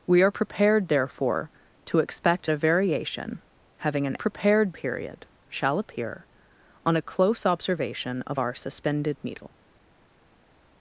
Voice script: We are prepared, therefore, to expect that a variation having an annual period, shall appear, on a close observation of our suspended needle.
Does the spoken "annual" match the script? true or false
false